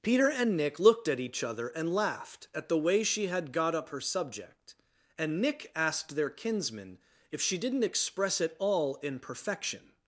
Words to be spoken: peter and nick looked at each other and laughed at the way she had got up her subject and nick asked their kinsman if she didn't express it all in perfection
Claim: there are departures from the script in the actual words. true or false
false